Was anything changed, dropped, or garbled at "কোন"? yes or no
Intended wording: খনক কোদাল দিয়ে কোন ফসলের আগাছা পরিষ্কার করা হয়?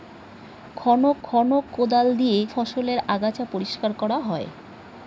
yes